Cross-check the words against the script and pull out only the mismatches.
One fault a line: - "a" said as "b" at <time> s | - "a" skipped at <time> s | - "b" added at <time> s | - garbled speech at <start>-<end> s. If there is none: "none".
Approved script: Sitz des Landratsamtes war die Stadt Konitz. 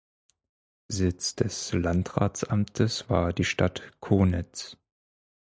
none